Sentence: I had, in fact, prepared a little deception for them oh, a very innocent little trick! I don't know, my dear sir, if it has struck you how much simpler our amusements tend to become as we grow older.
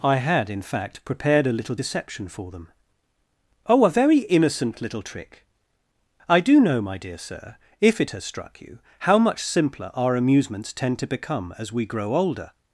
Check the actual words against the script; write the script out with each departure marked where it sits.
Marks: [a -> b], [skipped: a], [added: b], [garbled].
I had, in fact, prepared a little deception for them oh, a very innocent little trick! I [don't -> do] know, my dear sir, if it has struck you how much simpler our amusements tend to become as we grow older.